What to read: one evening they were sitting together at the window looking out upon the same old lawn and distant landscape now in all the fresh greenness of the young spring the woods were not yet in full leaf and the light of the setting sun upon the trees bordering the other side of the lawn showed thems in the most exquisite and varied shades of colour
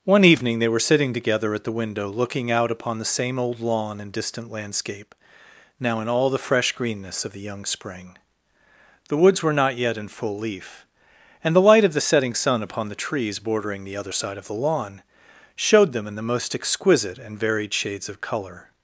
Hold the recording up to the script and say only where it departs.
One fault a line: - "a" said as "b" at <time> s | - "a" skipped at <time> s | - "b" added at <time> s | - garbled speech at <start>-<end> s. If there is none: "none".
- "thems" said as "them" at 15.9 s